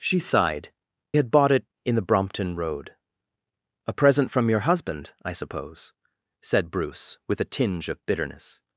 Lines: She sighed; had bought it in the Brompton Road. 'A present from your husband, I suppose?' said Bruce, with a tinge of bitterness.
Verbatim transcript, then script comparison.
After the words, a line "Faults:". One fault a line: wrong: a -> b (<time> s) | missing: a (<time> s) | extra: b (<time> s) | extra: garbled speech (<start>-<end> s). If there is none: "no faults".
She sighed; had bought it in the Brompton Road. 'A present from your husband, I suppose?' said Bruce, with a tinge of bitterness.
Faults:
no faults